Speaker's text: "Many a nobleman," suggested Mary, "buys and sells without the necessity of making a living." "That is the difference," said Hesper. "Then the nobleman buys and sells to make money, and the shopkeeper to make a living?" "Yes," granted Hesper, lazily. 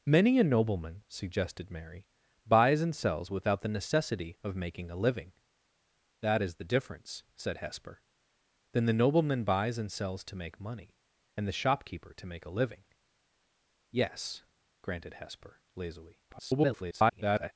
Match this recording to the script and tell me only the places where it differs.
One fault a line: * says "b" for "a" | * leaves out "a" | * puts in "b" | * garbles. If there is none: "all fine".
* garbles